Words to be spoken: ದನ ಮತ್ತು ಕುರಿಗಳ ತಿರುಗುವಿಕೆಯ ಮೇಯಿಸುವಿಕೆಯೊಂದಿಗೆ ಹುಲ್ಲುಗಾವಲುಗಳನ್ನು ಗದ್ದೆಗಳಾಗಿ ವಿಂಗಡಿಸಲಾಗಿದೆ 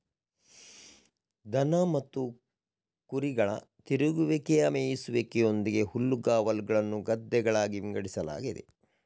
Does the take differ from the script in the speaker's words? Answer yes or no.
no